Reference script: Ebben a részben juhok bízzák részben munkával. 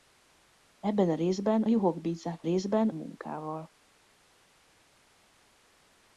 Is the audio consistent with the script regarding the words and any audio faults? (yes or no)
yes